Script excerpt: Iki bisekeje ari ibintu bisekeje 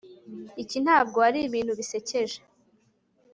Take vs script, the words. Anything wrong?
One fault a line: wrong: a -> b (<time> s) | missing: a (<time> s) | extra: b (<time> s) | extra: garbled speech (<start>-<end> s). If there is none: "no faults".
wrong: bisekeje -> ntabwo (0.8 s)